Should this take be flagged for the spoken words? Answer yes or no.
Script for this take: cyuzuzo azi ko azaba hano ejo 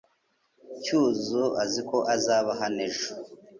no